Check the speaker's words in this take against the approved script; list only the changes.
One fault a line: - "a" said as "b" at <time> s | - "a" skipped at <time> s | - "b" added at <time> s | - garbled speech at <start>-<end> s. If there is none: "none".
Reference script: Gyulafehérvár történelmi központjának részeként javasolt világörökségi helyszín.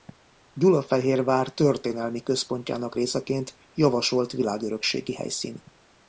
none